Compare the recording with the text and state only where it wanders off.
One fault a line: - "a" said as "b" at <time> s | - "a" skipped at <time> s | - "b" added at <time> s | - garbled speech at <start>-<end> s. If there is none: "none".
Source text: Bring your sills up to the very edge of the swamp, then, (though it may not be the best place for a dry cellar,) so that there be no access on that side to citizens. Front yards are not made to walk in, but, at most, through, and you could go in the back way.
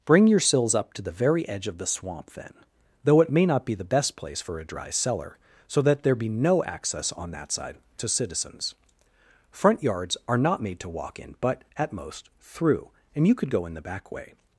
none